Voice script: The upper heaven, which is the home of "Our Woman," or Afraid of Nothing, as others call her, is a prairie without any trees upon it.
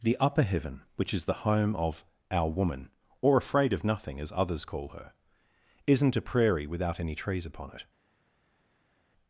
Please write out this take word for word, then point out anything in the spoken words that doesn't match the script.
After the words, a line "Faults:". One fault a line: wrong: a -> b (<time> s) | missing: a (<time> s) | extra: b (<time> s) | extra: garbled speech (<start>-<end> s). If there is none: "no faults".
The upper heaven, which is the home of "Our Woman," or Afraid of Nothing, as others call her, isn't a prairie without any trees upon it.
Faults:
wrong: is -> isn't (5.9 s)